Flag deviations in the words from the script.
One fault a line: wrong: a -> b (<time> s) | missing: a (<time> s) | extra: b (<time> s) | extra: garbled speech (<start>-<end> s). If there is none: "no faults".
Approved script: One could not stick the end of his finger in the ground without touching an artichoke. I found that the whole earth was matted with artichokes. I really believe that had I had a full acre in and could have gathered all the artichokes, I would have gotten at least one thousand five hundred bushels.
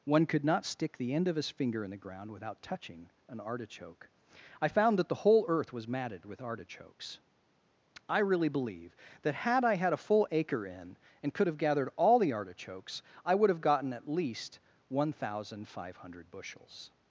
no faults